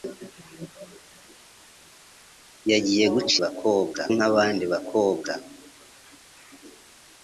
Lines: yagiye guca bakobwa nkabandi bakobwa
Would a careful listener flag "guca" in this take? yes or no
no